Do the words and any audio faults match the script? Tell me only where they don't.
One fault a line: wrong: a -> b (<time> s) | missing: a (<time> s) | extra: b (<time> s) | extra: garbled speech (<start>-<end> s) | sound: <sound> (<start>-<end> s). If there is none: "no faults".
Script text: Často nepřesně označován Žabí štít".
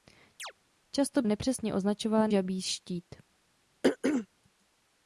sound: chirp (0.4-0.5 s)
sound: throat clearing (3.8-4.3 s)